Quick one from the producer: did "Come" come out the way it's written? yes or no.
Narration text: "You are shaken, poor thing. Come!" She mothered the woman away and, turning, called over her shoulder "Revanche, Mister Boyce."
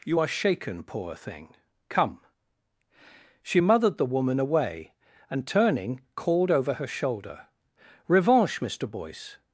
yes